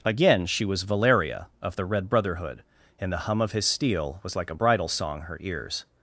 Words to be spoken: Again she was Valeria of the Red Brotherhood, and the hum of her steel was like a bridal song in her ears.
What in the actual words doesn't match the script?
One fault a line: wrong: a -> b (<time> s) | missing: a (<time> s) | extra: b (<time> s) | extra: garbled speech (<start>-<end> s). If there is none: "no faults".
wrong: her -> his (3.5 s)
missing: in (5.2 s)